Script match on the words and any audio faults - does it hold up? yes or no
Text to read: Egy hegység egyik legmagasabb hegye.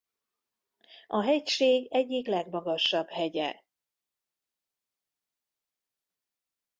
no